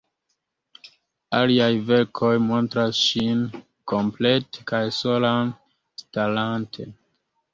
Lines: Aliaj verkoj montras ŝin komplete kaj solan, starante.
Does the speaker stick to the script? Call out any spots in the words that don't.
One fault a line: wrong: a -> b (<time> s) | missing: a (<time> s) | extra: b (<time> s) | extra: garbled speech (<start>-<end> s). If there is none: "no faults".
no faults